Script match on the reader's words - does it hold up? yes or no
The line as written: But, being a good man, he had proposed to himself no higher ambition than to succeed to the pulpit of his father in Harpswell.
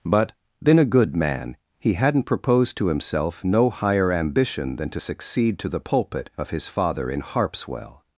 no